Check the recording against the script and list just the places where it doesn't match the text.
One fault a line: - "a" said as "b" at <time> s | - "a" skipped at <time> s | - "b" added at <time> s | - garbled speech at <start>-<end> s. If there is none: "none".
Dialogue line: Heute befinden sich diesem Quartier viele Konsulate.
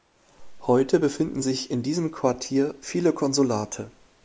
- "in" added at 1.7 s